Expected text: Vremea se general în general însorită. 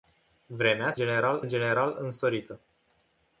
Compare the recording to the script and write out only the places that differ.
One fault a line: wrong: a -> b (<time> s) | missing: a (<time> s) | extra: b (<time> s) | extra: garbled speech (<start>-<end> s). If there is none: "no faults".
no faults